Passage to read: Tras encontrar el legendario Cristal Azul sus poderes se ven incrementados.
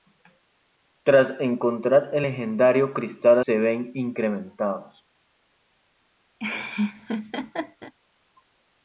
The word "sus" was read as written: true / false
false